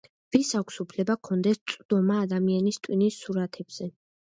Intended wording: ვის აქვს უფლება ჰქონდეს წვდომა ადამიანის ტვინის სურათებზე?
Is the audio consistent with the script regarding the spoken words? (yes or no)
yes